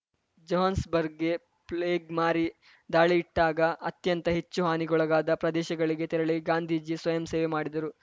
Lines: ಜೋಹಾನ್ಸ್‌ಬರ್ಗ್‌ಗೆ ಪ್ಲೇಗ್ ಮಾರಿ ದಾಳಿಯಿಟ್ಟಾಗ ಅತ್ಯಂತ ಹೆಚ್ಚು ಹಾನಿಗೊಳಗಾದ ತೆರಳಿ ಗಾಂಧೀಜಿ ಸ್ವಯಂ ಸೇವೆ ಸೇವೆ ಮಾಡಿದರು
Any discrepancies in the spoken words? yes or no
yes